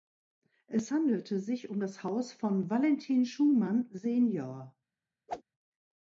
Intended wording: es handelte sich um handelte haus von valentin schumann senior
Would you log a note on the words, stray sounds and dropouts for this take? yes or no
yes